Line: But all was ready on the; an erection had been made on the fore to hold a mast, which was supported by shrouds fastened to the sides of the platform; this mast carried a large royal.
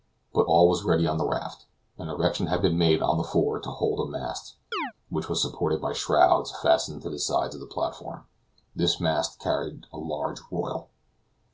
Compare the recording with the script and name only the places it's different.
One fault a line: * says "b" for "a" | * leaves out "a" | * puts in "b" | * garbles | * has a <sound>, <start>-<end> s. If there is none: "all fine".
* puts in "raft"
* has a chirp, 4.7-4.9 s